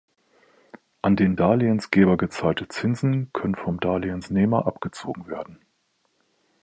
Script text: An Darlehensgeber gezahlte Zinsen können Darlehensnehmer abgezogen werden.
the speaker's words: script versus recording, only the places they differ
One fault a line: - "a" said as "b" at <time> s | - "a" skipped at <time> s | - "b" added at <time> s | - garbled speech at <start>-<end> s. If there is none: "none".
- "den" added at 1.1 s
- "vom" added at 3.5 s